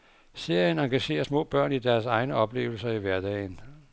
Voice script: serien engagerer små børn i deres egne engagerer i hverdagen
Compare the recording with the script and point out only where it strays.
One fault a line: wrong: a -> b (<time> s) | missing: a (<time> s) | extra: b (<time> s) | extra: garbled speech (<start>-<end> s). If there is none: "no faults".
wrong: engagerer -> oplevelser (2.4 s)